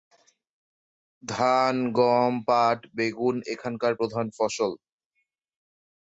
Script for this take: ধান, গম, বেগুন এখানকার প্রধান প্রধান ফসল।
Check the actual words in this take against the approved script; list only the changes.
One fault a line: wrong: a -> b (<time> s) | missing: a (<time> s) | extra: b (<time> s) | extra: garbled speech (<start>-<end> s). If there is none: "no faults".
extra: পাট (2.5 s)
missing: প্রধান (4.3 s)